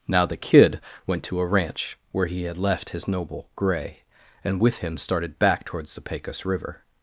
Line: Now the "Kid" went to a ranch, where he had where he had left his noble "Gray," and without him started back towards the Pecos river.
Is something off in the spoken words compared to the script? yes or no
yes